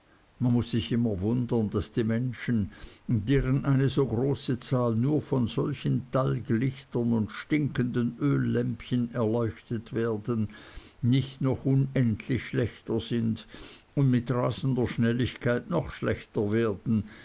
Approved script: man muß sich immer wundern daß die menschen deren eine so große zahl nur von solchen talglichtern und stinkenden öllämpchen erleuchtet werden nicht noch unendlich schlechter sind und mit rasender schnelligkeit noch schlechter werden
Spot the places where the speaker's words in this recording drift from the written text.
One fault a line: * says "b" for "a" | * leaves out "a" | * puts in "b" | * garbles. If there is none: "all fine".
all fine